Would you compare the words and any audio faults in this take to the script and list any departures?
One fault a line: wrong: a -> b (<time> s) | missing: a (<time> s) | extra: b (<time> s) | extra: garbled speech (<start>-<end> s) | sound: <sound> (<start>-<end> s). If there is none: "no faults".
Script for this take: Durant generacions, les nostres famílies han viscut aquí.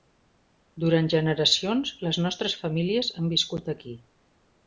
no faults